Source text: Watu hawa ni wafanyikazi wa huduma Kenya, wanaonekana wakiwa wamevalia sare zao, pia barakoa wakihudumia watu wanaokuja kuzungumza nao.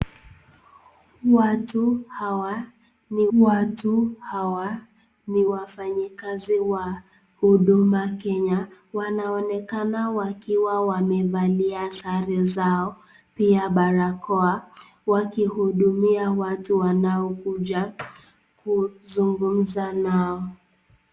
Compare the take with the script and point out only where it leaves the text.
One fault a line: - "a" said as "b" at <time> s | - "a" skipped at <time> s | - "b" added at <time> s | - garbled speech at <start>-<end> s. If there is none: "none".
- "watu hawa ni" added at 3.4 s